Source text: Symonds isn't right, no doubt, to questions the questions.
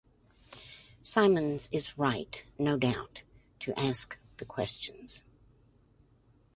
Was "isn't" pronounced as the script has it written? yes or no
no